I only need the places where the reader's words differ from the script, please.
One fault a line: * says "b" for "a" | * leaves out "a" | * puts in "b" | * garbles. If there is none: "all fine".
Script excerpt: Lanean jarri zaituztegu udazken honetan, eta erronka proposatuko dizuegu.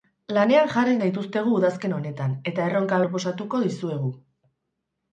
all fine